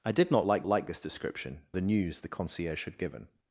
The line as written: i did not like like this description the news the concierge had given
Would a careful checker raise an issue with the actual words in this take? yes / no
no